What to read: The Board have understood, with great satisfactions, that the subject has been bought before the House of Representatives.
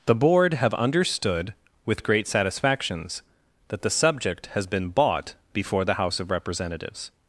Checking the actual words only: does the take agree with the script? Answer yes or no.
yes